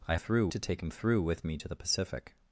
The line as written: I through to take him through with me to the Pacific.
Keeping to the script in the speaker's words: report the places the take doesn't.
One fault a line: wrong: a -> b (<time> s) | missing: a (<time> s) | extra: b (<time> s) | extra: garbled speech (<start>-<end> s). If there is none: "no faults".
no faults